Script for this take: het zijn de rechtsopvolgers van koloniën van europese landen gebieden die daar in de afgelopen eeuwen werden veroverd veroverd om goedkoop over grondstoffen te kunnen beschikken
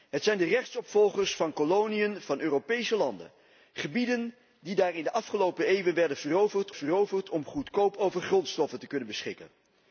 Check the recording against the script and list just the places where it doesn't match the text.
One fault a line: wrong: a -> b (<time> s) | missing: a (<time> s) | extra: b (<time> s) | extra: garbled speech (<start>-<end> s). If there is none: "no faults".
no faults